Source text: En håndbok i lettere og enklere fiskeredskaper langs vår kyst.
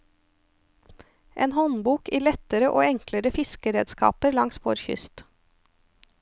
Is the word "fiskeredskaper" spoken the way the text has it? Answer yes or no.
yes